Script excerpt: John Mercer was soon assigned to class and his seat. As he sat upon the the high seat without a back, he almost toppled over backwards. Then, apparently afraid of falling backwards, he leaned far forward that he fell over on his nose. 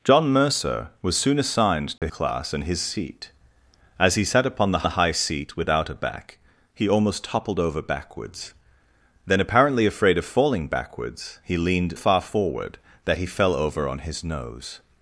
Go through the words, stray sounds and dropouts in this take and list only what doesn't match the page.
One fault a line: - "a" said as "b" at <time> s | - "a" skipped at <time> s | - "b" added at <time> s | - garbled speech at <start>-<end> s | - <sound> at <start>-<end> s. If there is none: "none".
- dropout at 2.0-2.0 s